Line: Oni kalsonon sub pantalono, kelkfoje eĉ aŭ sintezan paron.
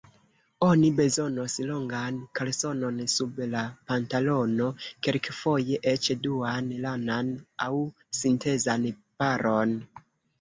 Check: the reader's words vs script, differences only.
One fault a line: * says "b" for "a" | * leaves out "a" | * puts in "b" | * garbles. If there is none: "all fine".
* puts in "bezonos longan"
* puts in "la"
* puts in "duan lanan"